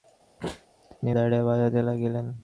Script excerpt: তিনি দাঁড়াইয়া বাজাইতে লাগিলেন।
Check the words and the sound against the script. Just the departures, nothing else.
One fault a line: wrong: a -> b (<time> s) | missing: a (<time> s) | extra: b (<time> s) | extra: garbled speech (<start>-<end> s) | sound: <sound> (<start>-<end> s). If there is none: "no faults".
sound: sneeze (0.4-0.7 s)